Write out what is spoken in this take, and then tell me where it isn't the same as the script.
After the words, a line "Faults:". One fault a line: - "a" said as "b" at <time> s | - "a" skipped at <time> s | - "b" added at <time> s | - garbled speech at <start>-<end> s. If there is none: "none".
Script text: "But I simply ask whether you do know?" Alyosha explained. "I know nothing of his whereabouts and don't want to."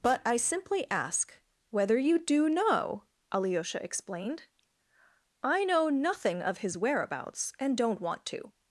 "But I simply ask whether you do know?" Alyosha explained. "I know nothing of his whereabouts and don't want to."
Faults:
none